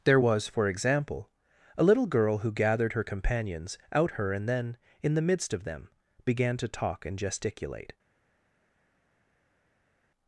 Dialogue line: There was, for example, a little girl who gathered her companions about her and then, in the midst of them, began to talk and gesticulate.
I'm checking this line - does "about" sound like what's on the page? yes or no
no